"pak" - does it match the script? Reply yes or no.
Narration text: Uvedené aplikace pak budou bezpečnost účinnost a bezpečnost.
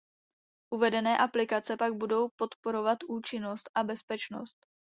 yes